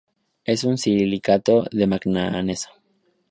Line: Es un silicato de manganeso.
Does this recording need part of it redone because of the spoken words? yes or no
no